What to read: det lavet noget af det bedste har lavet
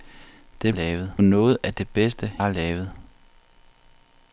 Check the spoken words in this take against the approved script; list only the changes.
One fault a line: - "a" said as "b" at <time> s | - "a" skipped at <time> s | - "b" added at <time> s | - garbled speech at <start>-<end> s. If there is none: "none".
none